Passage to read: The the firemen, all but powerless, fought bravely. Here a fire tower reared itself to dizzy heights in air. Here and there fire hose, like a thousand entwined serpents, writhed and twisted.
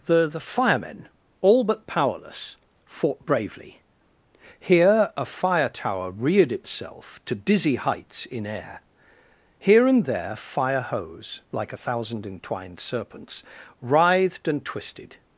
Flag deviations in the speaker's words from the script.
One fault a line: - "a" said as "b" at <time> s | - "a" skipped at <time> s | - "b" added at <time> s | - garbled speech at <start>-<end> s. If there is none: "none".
none